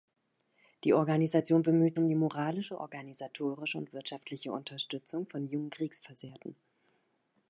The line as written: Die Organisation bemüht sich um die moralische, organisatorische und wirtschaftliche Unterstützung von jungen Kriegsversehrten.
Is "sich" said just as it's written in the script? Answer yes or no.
no